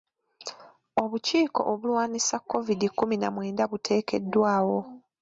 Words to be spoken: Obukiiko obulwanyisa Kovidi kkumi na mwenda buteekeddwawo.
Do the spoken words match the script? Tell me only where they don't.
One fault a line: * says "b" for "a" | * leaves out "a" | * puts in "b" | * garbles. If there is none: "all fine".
all fine